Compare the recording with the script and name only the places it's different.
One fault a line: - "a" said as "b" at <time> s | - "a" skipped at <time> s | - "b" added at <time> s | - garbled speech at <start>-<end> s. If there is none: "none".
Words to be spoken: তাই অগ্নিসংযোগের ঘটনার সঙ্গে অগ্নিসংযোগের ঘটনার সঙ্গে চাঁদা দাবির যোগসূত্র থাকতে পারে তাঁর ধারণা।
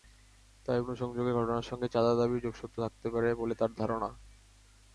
- "অগ্নিসংযোগের ঘটনার সঙ্গে" skipped at 1.9 s
- "বলে" added at 3.3 s